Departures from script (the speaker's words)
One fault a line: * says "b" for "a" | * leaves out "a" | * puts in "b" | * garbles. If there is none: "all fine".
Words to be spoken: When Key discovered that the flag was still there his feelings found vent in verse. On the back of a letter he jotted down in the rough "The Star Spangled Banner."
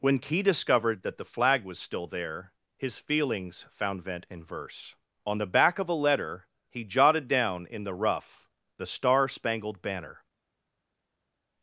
all fine